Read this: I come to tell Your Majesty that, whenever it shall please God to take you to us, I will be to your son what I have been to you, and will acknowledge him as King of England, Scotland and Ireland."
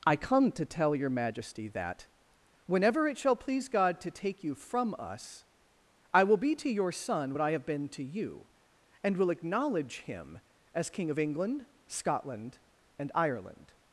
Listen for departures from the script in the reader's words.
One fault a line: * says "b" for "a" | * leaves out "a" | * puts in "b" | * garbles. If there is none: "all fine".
* says "from" for "to"